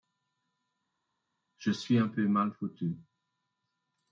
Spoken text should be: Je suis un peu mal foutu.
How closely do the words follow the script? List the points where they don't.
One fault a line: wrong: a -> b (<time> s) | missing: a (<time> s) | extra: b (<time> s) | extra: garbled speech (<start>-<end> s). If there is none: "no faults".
no faults